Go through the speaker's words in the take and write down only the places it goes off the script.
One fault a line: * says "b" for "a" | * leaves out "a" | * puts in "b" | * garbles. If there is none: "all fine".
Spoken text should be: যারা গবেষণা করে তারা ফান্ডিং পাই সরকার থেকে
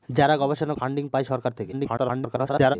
* leaves out "করে তারা"
* garbles